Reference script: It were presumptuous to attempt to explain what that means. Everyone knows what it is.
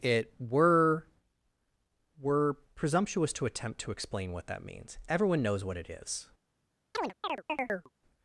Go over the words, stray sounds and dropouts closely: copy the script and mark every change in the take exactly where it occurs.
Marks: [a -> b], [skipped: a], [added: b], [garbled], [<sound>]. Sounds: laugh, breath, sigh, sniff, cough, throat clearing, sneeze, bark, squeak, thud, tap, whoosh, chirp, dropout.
It were [added: were] presumptuous to attempt to explain what that means. Everyone knows what it is. [chirp]